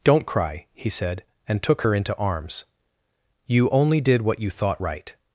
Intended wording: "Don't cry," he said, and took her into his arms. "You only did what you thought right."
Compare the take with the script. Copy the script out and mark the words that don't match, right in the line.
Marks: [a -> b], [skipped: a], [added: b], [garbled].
"Don't cry," he said, and took her into [skipped: his] arms. "You only did what you thought right."